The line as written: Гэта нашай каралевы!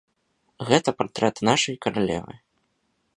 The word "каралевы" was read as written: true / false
true